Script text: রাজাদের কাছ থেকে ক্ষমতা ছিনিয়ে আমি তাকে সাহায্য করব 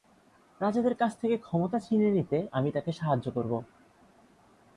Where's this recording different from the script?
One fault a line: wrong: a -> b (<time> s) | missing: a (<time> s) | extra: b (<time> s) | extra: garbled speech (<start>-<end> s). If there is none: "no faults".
extra: নিতে (2.2 s)